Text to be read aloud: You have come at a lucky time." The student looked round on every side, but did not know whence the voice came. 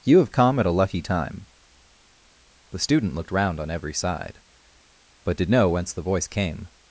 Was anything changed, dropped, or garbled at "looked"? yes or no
no